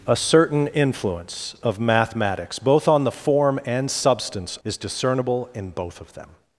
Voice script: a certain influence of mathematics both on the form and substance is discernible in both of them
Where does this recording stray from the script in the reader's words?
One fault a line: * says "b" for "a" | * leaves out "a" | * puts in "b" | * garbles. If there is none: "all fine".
all fine